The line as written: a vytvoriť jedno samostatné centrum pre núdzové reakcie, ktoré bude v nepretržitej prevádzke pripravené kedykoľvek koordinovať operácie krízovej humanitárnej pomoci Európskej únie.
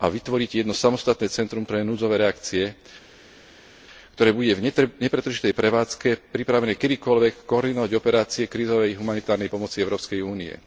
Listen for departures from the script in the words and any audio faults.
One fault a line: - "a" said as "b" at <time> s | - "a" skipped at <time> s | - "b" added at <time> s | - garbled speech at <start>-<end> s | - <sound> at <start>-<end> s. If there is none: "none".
none